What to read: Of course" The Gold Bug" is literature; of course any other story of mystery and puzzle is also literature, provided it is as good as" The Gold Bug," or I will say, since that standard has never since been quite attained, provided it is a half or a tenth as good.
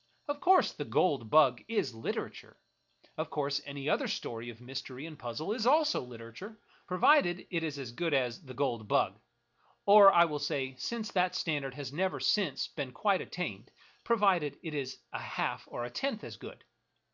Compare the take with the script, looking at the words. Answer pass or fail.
pass